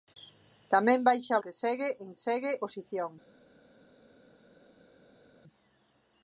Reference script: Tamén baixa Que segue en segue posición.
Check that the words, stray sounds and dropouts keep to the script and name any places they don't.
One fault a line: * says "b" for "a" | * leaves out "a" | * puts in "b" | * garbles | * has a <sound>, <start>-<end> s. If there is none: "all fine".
all fine